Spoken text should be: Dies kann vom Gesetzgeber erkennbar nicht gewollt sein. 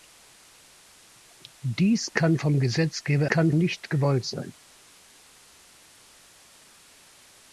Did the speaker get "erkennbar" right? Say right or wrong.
wrong